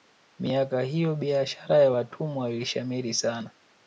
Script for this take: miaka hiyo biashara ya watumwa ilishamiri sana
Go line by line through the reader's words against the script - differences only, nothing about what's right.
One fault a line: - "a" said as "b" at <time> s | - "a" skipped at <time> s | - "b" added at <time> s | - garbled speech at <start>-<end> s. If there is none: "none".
none